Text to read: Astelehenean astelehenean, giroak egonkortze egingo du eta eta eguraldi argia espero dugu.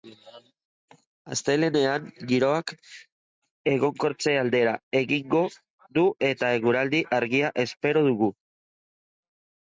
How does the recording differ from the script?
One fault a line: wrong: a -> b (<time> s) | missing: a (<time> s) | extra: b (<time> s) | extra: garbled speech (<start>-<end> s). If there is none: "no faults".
missing: astelehenean (2.0 s)
extra: aldera (4.4 s)
missing: eta (6.5 s)